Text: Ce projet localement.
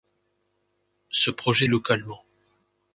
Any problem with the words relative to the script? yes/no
no